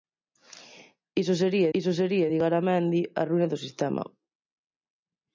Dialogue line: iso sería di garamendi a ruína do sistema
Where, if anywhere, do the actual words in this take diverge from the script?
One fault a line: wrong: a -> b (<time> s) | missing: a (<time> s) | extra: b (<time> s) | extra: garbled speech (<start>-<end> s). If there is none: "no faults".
extra: iso sería (1.8 s)